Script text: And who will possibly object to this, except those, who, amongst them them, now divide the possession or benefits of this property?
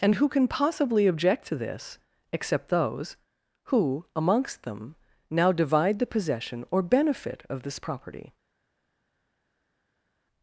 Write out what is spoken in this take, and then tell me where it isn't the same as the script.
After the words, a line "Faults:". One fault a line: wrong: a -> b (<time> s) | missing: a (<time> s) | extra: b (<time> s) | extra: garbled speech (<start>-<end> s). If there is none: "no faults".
And who can possibly object to this, except those, who, amongst them, now divide the possession or benefit of this property?
Faults:
wrong: will -> can (0.3 s)
missing: them (5.0 s)
wrong: benefits -> benefit (6.8 s)